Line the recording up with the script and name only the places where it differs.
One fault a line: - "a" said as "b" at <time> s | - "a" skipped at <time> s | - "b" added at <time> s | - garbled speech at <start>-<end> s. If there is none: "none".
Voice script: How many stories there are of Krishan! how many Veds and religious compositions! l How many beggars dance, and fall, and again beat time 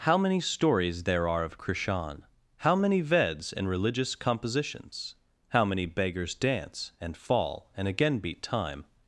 - "l" skipped at 5.1 s